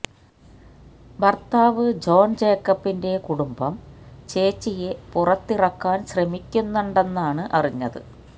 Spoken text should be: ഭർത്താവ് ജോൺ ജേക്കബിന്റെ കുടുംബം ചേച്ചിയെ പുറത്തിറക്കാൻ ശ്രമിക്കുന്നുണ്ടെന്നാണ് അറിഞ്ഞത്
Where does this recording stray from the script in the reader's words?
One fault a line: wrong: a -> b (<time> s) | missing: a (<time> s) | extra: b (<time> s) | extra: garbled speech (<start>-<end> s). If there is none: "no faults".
no faults